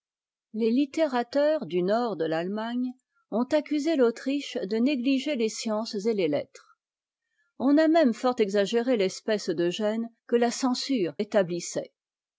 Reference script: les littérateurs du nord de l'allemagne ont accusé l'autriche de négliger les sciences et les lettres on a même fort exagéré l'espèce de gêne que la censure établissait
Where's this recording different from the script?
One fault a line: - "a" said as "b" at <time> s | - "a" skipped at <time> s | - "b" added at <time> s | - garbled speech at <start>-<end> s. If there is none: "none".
none